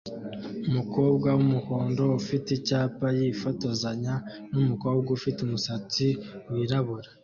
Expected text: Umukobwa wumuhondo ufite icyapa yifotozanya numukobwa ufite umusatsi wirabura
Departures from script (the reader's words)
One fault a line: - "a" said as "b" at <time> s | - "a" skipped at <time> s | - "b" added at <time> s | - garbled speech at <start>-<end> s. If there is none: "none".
none